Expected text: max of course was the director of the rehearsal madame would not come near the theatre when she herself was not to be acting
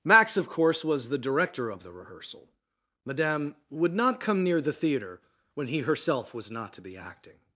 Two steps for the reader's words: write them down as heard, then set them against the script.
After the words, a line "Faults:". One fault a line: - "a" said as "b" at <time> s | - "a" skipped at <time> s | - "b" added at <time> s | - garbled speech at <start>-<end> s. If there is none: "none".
max of course was the director of the rehearsal madame would not come near the theatre when he herself was not to be acting
Faults:
- "she" said as "he" at 5.7 s